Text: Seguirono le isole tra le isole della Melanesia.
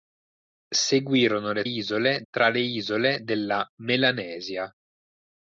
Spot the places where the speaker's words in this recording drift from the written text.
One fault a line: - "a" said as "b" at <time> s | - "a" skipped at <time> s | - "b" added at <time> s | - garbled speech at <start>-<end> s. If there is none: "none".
none